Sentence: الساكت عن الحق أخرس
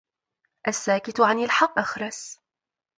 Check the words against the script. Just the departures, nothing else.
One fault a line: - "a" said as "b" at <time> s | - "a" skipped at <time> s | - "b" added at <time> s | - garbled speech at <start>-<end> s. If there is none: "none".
none